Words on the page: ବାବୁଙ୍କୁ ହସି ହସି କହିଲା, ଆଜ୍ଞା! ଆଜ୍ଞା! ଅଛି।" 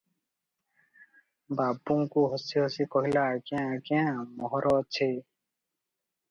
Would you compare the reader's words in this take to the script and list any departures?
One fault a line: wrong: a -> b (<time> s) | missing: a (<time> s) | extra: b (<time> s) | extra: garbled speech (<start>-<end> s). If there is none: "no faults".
extra: ମୋହର (4.4 s)